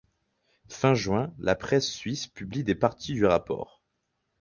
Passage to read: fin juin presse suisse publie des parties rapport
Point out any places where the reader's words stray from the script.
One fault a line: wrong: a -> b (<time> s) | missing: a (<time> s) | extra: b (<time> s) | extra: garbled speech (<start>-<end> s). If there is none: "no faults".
extra: la (1.4 s)
extra: du (3.1 s)